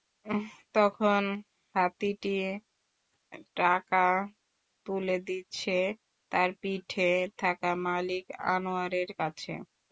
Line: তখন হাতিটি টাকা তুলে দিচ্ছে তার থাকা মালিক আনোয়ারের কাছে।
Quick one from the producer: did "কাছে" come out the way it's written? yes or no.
yes